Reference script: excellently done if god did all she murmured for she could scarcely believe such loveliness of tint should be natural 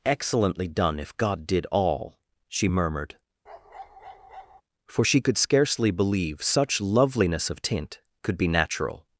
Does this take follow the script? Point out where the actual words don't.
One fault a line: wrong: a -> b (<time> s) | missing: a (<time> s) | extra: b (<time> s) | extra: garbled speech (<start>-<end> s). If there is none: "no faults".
wrong: should -> could (8.2 s)